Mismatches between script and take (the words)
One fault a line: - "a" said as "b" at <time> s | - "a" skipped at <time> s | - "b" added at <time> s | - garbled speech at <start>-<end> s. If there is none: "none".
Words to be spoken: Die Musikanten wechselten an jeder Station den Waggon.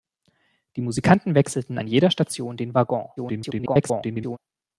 - garbled speech at 3.2-4.4 s